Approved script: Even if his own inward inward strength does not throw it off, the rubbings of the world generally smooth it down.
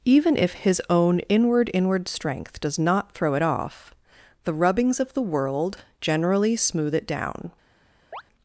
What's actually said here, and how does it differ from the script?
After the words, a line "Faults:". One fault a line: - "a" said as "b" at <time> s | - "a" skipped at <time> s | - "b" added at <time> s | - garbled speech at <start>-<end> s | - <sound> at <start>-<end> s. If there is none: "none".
Even if his own inward inward strength does not throw it off, the rubbings of the world generally smooth it down.
Faults:
- chirp at 8.1-8.2 s